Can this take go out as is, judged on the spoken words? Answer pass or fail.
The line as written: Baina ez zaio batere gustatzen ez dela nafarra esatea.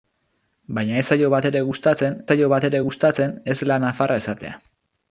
fail